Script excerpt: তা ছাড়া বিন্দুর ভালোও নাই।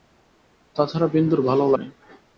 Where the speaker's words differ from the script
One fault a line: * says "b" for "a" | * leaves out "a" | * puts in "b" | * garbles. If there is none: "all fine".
all fine